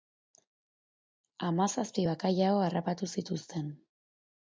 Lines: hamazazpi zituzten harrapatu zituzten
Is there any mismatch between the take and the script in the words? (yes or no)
yes